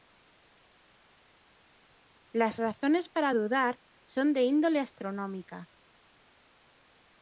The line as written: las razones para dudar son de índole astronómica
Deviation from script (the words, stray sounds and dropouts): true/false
false